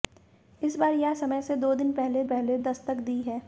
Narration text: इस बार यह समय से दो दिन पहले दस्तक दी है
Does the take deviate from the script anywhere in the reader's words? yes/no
yes